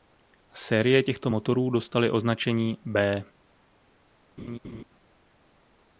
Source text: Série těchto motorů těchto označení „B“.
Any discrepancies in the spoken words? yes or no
yes